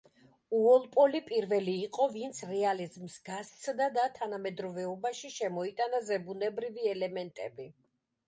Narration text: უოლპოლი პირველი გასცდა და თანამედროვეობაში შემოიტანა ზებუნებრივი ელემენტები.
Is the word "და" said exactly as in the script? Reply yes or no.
yes